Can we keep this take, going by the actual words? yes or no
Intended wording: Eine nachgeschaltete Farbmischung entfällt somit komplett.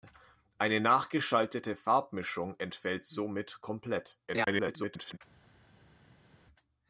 no